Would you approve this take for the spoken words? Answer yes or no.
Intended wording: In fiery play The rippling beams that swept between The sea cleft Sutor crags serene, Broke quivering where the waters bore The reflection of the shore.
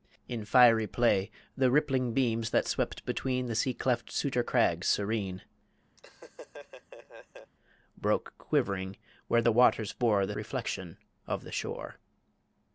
yes